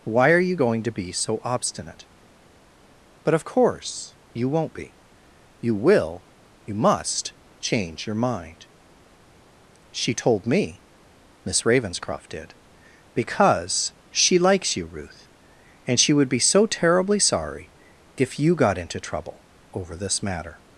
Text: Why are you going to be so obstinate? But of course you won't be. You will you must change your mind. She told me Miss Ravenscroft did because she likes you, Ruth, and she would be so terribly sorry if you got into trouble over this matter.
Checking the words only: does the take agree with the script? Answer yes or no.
yes